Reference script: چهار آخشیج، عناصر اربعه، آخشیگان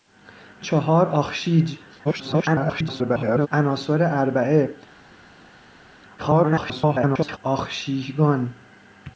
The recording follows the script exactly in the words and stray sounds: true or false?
false